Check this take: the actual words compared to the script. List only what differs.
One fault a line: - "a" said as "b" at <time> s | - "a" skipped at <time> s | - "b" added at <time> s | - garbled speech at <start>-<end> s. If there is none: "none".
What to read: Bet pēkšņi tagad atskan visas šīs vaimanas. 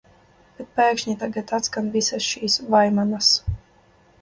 none